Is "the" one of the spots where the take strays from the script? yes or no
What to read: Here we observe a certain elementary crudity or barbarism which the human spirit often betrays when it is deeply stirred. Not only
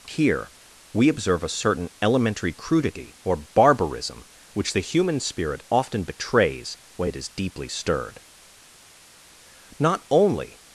no